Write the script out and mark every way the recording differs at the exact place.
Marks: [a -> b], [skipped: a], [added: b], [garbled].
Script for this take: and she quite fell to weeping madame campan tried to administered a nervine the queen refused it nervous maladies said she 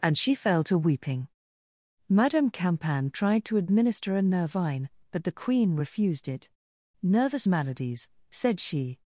and she [skipped: quite] fell to weeping madame campan tried to [administered -> administer] a nervine [added: but] the queen refused it nervous maladies said she